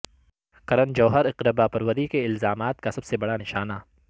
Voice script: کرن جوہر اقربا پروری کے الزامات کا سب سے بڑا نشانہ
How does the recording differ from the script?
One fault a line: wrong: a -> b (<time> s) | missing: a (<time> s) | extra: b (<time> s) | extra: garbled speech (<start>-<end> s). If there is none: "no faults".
no faults